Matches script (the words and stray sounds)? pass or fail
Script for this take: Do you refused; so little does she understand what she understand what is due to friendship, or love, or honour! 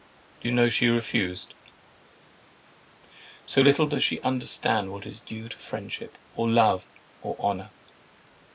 fail